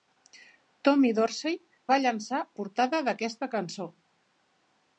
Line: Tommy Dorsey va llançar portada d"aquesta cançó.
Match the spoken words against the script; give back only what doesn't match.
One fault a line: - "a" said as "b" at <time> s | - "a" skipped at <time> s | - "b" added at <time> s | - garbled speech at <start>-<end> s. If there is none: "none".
none